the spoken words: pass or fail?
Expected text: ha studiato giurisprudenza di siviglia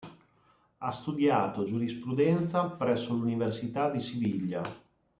fail